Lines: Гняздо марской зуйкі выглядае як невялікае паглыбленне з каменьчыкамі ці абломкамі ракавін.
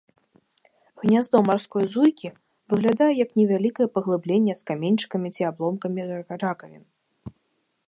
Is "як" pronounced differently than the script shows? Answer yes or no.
no